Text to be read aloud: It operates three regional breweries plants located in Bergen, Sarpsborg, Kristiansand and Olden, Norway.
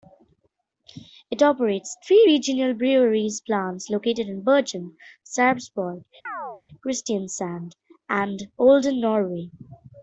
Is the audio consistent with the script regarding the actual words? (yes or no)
yes